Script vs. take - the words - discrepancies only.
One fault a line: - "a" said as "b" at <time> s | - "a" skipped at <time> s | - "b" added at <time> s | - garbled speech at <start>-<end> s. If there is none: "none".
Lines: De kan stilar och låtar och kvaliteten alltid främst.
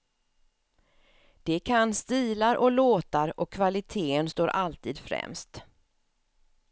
- "står" added at 4.3 s